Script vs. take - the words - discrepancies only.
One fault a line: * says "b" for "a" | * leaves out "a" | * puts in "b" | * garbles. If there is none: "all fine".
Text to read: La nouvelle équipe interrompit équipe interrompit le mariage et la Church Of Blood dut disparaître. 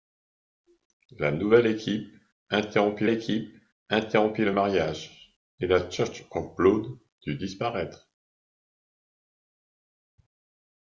all fine